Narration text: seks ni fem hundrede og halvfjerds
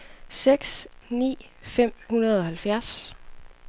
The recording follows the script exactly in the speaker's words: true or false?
true